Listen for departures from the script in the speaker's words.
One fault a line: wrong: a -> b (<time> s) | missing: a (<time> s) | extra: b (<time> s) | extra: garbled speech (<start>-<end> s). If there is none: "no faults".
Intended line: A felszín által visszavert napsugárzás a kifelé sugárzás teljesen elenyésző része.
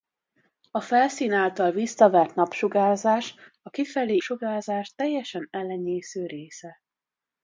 no faults